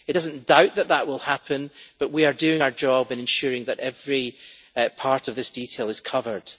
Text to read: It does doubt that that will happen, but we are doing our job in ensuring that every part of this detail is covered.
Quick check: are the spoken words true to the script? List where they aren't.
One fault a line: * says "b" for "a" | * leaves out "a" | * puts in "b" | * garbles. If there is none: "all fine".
* puts in "not"